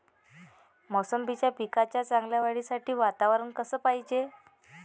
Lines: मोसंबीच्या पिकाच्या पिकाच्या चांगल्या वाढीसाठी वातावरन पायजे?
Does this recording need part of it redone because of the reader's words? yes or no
yes